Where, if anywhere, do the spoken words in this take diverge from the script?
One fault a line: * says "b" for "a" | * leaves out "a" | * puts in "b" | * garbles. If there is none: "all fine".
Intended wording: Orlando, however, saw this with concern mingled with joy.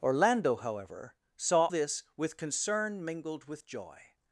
all fine